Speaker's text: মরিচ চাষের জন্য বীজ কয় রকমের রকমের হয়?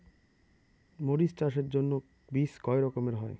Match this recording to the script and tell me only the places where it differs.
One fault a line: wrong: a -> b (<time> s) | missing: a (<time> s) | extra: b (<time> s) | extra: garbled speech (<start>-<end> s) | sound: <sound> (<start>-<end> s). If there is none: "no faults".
missing: রকমের (3.1 s)